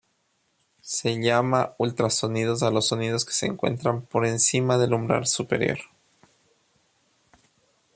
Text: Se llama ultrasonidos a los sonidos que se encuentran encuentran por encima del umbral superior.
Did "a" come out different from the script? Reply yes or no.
no